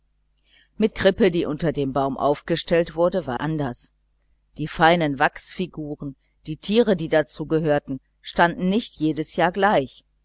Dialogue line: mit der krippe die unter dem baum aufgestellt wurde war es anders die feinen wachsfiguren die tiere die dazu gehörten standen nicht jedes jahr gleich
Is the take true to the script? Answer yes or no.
no